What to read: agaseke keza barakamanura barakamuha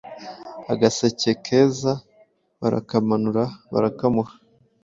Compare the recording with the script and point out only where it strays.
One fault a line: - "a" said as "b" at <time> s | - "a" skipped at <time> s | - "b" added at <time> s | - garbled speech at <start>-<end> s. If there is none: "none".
none